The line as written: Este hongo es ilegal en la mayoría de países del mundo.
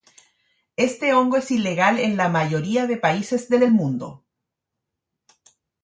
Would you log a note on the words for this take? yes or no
yes